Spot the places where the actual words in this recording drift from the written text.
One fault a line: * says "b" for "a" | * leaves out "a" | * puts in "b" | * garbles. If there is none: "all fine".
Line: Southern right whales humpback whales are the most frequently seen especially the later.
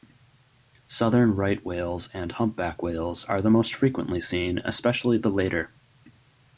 * puts in "and"